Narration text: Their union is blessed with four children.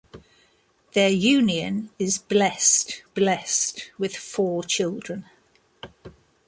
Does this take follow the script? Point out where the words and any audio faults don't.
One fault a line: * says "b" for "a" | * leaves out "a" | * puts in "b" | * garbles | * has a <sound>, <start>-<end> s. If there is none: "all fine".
* puts in "blessed"